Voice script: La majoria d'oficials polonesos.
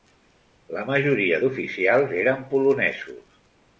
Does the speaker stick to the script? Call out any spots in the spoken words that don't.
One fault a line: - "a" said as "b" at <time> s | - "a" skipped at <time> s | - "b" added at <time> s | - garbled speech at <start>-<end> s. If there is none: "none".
- "eren" added at 2.2 s